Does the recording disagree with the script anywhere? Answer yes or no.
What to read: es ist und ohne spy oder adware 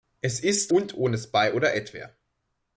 no